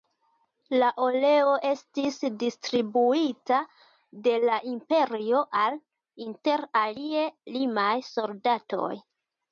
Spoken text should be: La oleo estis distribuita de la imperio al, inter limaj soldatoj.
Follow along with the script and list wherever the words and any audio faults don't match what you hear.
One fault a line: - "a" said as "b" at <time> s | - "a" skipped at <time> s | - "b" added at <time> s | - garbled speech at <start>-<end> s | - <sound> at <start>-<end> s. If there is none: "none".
- "alie" added at 6.8 s